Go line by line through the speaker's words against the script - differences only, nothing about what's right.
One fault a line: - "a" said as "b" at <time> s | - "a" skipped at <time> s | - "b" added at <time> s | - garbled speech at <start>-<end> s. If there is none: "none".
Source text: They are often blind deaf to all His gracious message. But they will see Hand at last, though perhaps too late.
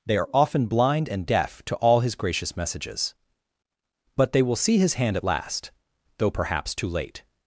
- "and" added at 1.1 s
- "message" said as "messages" at 2.6 s
- "His" added at 4.8 s